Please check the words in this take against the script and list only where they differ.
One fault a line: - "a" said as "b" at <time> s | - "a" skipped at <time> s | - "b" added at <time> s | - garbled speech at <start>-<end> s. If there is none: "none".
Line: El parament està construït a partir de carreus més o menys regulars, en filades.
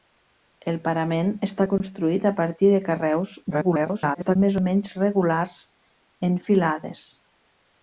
- garbled speech at 3.5-4.4 s